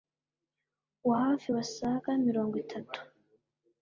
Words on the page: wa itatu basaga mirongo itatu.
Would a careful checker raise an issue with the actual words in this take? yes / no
yes